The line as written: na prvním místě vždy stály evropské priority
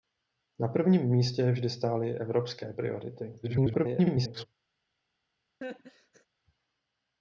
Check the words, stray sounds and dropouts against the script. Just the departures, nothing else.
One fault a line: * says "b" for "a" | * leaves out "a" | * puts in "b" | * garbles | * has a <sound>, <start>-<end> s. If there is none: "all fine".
* garbles
* has a laugh, 5.6-6.3 s